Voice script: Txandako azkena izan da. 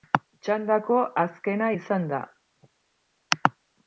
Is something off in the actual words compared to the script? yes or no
no